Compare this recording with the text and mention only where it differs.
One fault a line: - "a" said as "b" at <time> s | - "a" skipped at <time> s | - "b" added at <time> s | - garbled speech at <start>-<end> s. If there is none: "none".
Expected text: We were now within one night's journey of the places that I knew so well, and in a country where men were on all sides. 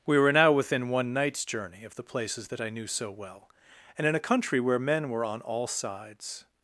none